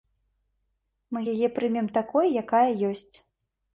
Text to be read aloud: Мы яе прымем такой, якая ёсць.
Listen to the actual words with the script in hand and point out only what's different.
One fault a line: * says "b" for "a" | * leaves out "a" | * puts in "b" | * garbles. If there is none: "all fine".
all fine